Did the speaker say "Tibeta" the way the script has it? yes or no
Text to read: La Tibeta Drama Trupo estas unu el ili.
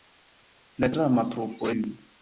no